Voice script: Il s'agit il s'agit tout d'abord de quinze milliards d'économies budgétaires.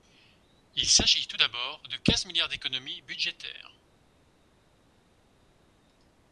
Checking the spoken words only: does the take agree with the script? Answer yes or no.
no